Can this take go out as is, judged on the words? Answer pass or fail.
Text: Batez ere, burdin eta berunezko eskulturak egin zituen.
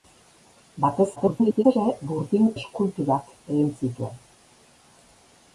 fail